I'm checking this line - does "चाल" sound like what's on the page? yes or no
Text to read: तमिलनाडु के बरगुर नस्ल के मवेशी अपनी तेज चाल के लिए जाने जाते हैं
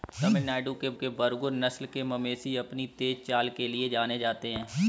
yes